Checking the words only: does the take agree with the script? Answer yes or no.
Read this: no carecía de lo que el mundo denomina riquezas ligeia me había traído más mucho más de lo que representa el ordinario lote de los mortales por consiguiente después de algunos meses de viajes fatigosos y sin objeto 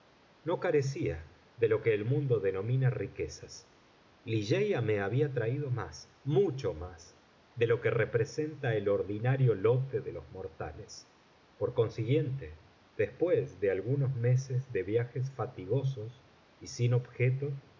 yes